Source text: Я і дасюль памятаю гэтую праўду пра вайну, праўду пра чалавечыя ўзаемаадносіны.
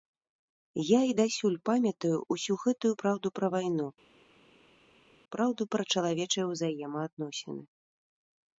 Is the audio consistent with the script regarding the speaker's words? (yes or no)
no